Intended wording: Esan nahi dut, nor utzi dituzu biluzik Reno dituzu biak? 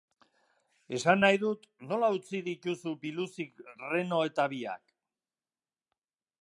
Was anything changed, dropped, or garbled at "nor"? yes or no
yes